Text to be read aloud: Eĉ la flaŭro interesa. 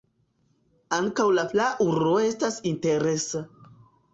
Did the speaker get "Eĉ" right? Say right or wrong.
wrong